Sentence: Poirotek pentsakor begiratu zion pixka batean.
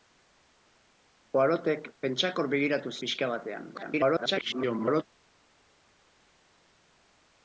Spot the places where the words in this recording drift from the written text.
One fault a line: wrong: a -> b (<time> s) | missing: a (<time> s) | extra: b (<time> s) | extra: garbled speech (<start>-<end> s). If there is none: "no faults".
missing: zion (3.0 s)
extra: garbled speech (3.7-5.0 s)